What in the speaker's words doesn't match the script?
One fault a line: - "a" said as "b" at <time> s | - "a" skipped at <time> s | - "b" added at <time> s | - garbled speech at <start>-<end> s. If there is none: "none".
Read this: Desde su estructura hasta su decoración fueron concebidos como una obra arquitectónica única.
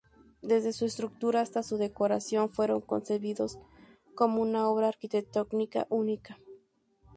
none